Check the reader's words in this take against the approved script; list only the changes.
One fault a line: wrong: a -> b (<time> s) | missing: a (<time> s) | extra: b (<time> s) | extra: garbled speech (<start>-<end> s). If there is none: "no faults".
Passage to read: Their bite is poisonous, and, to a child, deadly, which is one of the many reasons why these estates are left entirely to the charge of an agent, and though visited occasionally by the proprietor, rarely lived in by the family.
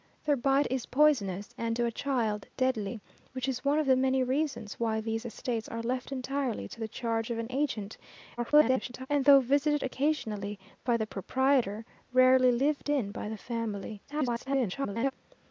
extra: garbled speech (8.4-9.1 s)
extra: garbled speech (14.1-15.1 s)